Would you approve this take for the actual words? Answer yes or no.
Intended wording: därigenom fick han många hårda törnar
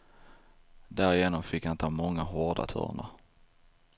no